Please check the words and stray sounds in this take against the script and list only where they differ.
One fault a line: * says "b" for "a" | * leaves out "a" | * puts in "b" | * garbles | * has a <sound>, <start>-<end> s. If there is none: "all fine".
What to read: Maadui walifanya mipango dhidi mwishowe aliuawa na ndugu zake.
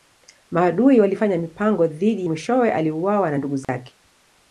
* has a dropout, 3.6-3.7 s